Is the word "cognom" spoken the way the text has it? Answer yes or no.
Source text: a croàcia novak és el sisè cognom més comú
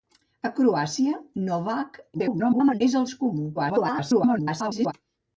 no